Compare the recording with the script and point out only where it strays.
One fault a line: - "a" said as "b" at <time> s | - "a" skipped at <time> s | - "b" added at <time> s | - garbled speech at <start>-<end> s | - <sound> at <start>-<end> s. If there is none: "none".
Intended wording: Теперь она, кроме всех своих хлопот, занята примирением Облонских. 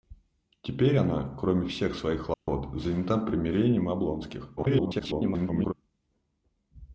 - dropout at 2.3-2.5 s
- garbled speech at 4.6-5.7 s